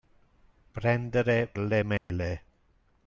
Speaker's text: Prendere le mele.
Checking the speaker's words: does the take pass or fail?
pass